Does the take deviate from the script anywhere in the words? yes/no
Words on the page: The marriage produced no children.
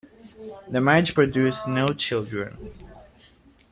no